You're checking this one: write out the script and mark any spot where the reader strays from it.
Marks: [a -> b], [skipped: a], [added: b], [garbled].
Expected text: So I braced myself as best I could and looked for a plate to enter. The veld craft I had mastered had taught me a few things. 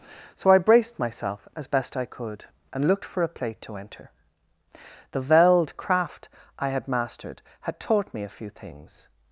So I braced myself as best I could and looked for a plate to enter. The veld craft I had mastered had taught me a few things.